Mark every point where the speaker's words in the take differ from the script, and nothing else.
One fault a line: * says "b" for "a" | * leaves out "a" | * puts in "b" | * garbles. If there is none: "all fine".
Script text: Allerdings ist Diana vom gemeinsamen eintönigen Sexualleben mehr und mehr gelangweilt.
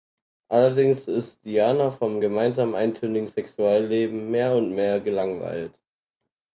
all fine